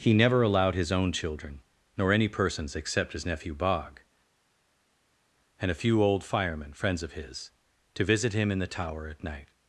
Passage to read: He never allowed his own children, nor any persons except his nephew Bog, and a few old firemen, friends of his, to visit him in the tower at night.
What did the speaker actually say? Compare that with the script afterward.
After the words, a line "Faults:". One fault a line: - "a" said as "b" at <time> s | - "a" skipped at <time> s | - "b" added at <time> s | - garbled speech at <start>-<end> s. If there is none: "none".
He never allowed his own children, nor any persons except his nephew Bog, and a few old firemen, friends of his, to visit him in the tower at night.
Faults:
none